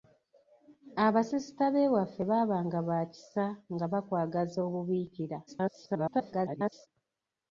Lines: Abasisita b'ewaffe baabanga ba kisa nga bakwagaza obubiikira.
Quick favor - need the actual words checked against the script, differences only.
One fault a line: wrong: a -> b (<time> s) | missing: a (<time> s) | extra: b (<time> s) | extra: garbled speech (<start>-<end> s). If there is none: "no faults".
extra: garbled speech (5.5-6.9 s)